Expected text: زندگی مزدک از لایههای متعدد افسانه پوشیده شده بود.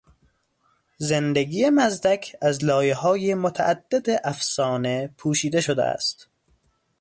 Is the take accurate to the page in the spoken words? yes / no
no